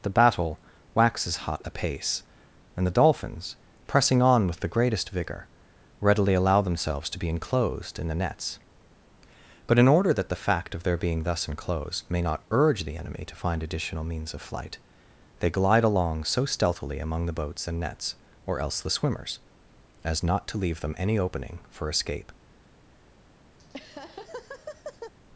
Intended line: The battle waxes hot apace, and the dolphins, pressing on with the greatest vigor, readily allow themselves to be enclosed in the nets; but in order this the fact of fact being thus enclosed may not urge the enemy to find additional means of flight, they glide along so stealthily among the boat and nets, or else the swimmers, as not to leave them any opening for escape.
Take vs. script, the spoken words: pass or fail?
fail